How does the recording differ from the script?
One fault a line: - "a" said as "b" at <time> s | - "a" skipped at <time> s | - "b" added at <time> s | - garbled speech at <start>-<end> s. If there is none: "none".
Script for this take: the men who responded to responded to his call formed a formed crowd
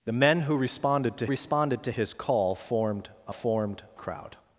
none